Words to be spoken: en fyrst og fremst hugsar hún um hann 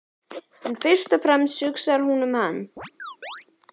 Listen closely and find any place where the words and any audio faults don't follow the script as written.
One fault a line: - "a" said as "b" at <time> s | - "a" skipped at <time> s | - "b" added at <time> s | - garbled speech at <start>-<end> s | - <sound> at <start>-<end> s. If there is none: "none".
- chirp at 2.8-3.5 s